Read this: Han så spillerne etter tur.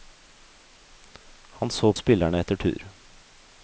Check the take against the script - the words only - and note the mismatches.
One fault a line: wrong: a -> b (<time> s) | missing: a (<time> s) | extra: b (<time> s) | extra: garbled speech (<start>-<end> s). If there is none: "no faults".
no faults